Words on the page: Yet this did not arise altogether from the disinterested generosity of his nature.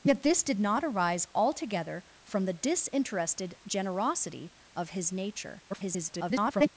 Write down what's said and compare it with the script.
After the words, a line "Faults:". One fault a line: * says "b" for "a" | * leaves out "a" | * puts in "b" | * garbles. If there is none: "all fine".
Yet this did not arise altogether from the disinterested generosity of his nature. [garbled]
Faults:
* garbles